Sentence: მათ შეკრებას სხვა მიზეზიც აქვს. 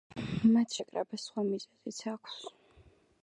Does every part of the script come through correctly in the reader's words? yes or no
yes